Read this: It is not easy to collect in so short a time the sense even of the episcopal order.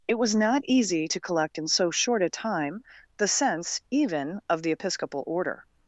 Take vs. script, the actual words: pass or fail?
fail